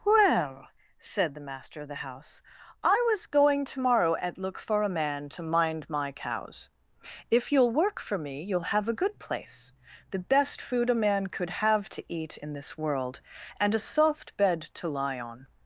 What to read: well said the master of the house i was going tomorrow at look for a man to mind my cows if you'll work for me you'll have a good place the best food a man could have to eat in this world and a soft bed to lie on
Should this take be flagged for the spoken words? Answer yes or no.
no